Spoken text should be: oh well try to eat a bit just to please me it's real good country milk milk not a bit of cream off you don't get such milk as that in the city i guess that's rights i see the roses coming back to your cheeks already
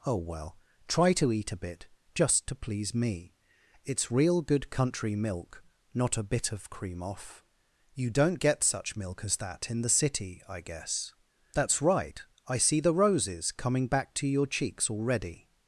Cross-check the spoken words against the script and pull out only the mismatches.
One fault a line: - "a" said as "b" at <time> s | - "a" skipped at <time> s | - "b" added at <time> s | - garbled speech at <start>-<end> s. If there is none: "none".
- "milk" skipped at 5.6 s
- "rights" said as "right" at 11.8 s